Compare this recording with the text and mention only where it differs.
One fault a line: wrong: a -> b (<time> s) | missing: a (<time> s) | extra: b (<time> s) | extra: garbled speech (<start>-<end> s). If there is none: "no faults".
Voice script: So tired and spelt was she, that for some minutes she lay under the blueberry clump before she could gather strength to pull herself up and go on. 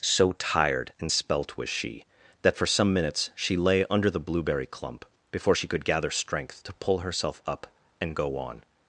no faults